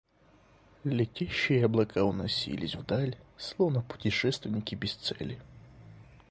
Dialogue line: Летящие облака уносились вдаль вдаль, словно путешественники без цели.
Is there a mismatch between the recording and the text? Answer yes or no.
yes